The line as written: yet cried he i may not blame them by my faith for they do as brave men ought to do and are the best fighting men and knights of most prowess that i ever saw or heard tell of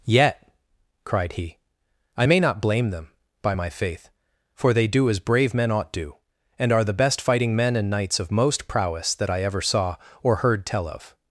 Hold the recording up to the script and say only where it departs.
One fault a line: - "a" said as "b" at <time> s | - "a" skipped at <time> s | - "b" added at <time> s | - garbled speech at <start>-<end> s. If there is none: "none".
- "to" skipped at 5.9 s